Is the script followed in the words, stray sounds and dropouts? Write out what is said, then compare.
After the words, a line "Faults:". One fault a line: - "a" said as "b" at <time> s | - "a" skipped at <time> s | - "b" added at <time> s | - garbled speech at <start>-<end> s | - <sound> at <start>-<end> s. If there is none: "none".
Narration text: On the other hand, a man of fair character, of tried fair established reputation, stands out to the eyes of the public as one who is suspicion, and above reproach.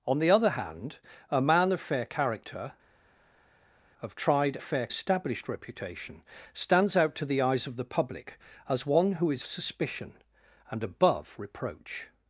On the other hand, a man of fair character, of tried fair established reputation, stands out to the eyes of the public as one who is suspicion, and above reproach.
Faults:
none